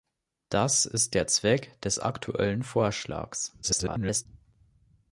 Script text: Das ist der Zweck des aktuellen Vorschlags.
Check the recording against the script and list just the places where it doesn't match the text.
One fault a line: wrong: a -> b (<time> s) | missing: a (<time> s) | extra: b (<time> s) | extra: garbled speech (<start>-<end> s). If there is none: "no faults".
extra: garbled speech (3.6-4.3 s)